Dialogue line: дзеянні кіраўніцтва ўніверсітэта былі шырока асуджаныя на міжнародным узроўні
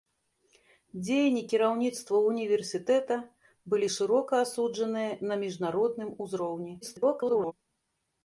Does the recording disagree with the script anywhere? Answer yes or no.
yes